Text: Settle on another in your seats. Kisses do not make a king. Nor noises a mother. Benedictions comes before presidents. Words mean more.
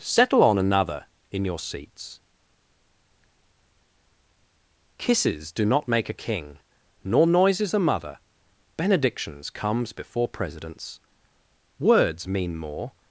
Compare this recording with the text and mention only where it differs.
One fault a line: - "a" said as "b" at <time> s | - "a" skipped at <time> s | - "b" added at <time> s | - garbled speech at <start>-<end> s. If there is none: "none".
none